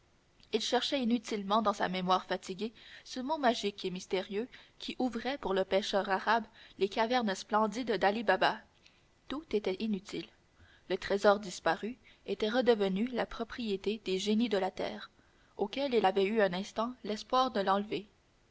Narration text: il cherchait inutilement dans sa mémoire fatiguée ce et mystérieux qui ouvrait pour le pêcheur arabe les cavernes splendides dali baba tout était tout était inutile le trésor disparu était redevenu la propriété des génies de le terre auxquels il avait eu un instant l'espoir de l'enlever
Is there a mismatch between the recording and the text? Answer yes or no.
yes